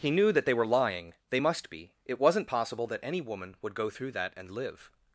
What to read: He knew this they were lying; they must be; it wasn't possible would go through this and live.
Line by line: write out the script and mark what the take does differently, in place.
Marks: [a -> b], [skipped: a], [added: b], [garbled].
He knew [this -> that] they were lying; they must be; it wasn't possible [added: that any woman] would go through [this -> that] and live.